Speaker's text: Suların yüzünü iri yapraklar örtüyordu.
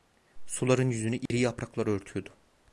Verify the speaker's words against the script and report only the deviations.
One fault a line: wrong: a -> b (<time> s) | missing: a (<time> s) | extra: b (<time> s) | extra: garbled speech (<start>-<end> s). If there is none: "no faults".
no faults